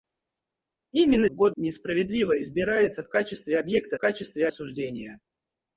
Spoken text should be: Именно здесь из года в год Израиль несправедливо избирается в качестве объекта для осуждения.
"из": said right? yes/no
no